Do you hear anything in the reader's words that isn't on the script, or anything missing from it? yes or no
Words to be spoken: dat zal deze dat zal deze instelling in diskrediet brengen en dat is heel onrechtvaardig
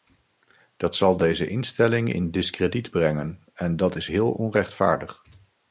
yes